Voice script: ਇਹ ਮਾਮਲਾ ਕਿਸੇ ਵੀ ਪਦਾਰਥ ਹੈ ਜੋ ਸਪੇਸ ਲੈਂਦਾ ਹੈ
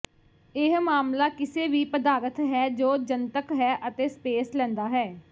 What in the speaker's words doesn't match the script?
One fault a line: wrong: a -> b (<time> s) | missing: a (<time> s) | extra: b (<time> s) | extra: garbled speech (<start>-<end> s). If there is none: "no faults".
extra: ਜਨਤਕ ਹੈ ਅਤੇ (3.0 s)